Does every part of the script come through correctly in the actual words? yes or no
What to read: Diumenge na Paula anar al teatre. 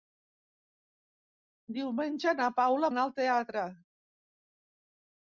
yes